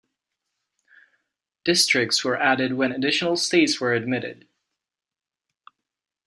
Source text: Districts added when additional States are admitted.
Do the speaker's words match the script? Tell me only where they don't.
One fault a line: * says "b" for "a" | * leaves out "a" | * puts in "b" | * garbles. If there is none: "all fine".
* puts in "were"
* says "were" for "are"